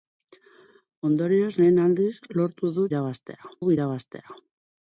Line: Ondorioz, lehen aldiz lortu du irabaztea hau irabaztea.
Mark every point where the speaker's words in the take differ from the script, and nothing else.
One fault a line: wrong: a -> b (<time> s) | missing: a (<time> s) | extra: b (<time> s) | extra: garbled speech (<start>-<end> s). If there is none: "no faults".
no faults